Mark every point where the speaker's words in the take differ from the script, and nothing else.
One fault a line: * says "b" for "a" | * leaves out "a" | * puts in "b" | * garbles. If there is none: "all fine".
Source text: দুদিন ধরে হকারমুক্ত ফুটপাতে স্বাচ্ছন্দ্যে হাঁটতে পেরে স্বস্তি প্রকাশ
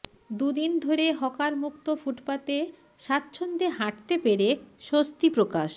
all fine